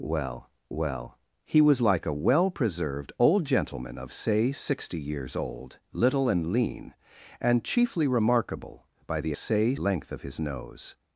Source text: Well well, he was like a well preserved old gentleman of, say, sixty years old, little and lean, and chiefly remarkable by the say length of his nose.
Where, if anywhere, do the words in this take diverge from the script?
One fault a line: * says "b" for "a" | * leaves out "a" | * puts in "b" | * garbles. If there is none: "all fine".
all fine